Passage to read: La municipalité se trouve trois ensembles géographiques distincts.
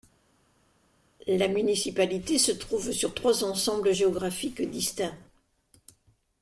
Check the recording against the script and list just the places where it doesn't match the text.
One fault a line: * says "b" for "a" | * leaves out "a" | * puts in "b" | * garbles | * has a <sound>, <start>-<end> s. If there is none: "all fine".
* puts in "sur"